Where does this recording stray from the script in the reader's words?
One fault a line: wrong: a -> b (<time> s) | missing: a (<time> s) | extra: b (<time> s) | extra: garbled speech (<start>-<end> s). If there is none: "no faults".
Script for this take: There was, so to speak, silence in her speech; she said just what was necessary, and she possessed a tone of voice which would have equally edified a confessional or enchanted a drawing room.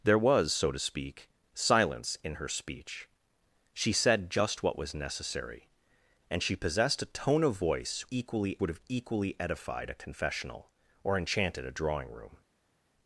wrong: which -> equally (8.1 s)